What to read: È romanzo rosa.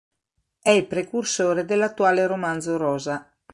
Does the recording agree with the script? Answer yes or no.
no